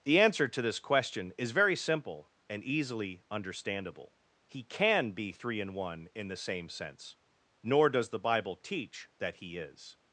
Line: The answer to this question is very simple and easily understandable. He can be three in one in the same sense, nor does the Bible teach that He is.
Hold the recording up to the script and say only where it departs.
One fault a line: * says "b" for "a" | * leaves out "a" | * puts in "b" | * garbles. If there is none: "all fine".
all fine